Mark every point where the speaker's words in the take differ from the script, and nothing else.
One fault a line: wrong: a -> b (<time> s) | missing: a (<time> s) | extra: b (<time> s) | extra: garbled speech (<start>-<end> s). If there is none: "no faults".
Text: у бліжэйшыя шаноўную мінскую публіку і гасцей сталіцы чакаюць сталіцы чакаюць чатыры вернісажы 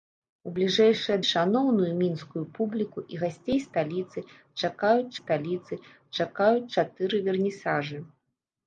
no faults